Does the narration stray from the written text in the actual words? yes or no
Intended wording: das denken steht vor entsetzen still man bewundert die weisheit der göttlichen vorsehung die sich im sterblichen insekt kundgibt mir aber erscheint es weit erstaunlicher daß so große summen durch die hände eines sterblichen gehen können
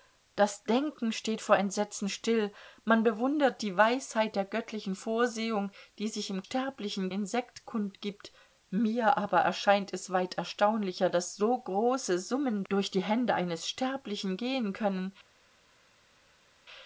no